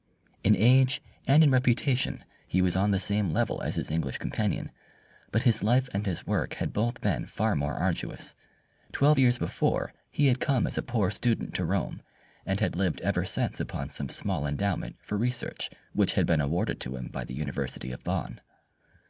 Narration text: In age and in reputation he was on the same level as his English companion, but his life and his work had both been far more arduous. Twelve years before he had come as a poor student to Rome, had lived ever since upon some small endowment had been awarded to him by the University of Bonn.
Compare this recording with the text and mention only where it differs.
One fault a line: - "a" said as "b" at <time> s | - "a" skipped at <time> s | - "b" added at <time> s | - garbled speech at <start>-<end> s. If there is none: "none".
- "and" added at 12.4 s
- "for research which" added at 15.0 s